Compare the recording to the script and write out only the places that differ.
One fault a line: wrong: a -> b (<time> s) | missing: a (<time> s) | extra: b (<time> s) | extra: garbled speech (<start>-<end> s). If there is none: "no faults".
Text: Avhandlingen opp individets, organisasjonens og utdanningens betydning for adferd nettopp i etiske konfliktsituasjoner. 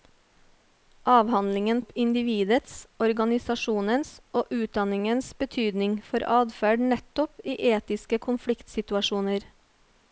no faults